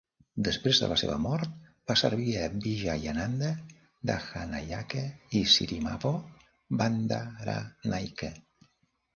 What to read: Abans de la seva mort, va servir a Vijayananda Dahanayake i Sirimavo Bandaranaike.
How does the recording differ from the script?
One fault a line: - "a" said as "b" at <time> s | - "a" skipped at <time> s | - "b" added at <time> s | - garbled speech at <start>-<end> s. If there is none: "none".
- "Abans" said as "Després" at 0.5 s